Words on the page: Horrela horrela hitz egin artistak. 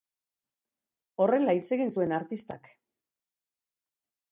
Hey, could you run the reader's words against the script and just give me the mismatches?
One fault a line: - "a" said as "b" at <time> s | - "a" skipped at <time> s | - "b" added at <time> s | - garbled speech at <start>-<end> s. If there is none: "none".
- "horrela" skipped at 1.6 s
- "zuen" added at 2.0 s